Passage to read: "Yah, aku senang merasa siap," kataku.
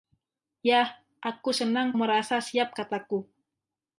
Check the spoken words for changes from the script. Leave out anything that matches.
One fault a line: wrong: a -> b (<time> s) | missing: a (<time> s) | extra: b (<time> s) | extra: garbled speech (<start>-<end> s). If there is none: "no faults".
no faults